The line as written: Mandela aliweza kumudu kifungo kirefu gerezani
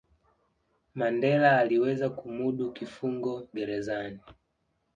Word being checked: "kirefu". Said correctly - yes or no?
no